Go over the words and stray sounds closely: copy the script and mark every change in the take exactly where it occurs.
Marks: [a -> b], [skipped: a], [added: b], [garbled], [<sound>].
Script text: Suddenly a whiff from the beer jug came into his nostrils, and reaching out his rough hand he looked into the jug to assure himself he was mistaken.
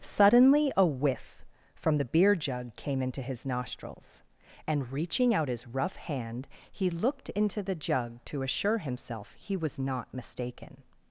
Suddenly a whiff from the beer jug came into his nostrils, and reaching out his rough hand he looked into the jug to assure himself he was [added: not] mistaken.